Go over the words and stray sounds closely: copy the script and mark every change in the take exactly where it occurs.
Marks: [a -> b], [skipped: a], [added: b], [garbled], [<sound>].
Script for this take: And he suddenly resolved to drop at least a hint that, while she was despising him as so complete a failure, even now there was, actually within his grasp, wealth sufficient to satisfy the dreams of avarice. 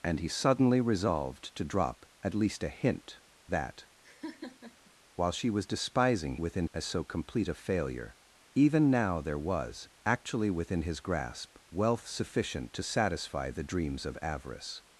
And he suddenly resolved to drop at least a hint that, [laugh] while she was despising [him -> within] as so complete a failure, even now there was, actually within his grasp, wealth sufficient to satisfy the dreams of avarice.